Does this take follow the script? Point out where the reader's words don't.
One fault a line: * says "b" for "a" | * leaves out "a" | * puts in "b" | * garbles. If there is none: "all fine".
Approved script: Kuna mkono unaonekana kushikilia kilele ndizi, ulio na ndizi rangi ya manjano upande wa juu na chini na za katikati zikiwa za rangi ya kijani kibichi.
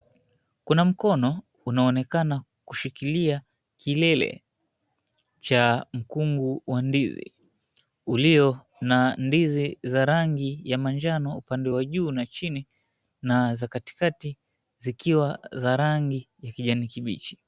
* puts in "cha mkungu wa"
* puts in "za"